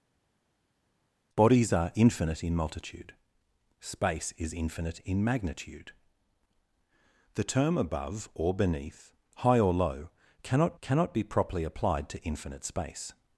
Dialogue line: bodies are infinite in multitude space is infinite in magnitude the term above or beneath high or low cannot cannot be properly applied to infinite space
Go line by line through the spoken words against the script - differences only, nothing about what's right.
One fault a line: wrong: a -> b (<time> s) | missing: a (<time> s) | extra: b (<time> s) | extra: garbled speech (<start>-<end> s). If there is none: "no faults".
no faults